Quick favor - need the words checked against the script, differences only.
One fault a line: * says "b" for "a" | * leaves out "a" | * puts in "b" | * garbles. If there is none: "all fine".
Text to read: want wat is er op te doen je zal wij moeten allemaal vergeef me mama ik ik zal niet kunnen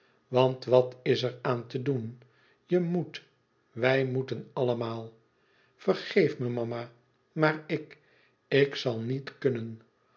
* says "aan" for "op"
* says "moet" for "zal"
* puts in "maar"